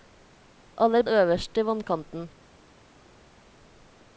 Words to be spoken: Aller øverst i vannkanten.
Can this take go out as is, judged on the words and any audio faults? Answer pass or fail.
pass